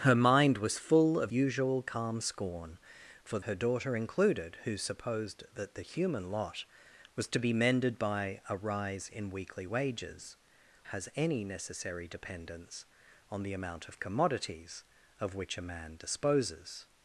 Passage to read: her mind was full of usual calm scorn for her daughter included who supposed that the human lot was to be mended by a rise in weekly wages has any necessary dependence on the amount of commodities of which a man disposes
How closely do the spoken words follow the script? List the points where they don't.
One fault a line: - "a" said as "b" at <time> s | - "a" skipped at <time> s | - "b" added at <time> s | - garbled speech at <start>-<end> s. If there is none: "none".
none